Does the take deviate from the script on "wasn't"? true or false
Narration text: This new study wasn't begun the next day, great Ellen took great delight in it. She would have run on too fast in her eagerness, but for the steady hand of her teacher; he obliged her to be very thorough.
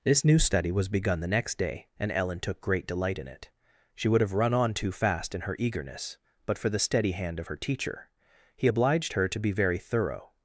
true